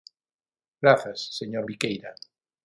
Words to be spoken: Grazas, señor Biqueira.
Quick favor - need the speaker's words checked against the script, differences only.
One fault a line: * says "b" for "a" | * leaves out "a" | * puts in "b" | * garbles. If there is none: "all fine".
all fine